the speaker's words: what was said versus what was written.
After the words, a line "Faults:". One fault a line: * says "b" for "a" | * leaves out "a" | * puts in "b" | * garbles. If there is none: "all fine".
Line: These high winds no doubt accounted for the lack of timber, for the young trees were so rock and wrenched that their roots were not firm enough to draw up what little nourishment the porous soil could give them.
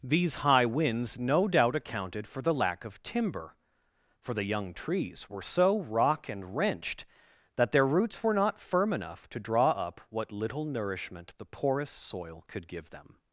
These high winds no doubt accounted for the lack of timber, for the young trees were so rock and wrenched that their roots were not firm enough to draw up what little nourishment the porous soil could give them.
Faults:
all fine